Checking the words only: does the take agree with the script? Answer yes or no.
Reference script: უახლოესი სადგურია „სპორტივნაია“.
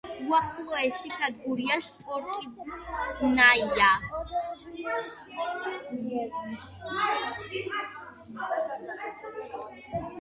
yes